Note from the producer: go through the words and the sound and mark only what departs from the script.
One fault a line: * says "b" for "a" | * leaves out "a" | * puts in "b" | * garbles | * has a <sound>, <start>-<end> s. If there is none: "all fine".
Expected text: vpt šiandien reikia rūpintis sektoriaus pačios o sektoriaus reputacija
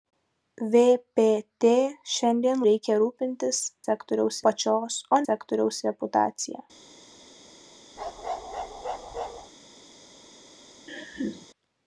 * has a bark, 8.0-9.5 s
* has a laugh, 10.9-11.5 s